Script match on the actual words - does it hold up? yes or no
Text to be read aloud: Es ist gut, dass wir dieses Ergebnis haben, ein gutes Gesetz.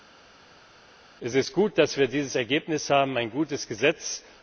yes